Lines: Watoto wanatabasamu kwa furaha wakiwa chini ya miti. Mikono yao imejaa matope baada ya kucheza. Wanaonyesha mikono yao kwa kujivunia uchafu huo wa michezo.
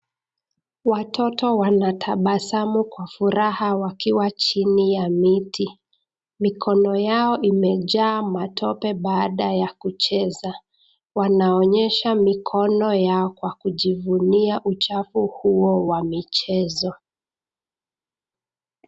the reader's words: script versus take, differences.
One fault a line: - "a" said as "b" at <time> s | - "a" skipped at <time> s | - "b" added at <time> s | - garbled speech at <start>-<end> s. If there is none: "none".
none